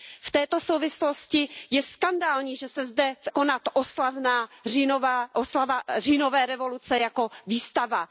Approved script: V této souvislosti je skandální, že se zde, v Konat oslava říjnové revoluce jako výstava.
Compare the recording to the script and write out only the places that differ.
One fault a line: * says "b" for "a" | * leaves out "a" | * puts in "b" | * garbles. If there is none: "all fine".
all fine